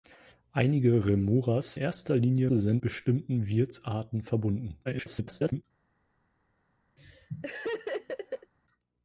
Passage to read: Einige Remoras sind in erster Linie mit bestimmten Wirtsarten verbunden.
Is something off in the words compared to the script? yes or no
yes